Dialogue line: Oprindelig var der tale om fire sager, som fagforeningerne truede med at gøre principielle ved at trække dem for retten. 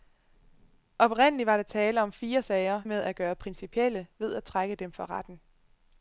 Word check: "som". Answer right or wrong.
wrong